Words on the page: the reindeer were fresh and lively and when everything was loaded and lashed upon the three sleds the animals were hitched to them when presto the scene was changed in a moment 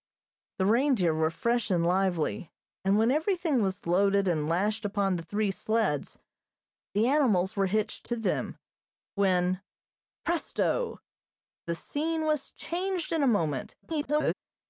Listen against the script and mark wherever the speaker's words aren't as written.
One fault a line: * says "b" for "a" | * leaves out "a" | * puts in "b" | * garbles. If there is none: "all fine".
* garbles